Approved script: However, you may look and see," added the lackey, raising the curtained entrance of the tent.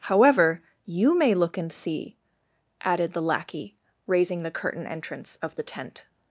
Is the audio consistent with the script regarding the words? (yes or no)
no